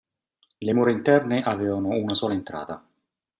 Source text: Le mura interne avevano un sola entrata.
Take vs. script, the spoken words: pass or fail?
fail